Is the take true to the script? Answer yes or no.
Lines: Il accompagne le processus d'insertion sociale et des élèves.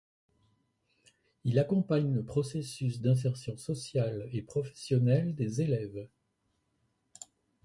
no